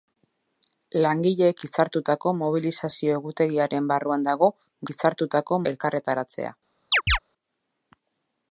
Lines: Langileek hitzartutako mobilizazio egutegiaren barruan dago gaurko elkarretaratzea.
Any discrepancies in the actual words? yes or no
yes